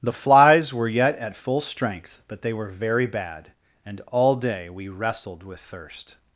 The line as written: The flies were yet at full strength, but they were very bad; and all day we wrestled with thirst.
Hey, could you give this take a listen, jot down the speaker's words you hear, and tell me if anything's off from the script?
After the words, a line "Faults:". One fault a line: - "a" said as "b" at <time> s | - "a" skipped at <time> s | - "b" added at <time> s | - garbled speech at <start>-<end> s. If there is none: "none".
The flies were yet at full strength, but they were very bad; and all day we wrestled with thirst.
Faults:
none